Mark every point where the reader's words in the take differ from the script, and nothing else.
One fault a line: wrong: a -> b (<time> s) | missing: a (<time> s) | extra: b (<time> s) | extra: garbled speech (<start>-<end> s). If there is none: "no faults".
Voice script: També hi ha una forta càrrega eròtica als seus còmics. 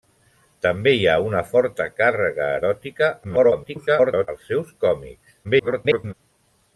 extra: garbled speech (3.2-4.3 s)
extra: garbled speech (5.4-6.1 s)